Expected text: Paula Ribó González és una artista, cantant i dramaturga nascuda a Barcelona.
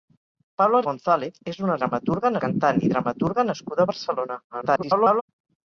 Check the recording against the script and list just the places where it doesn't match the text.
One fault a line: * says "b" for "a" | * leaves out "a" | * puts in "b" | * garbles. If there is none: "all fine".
* leaves out "Ribó"
* says "dramaturga" for "artista"
* garbles